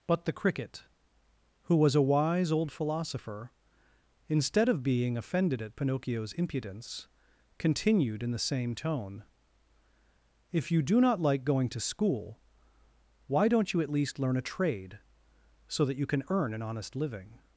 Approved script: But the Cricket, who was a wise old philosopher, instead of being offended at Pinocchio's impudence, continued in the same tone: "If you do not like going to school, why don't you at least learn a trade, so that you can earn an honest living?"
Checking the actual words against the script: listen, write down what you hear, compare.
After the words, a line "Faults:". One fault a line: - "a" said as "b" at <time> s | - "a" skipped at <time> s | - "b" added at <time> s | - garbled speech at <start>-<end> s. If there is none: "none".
But the Cricket, who was a wise old philosopher, instead of being offended at Pinocchio's impudence, continued in the same tone: "If you do not like going to school, why don't you at least learn a trade, so that you can earn an honest living?"
Faults:
none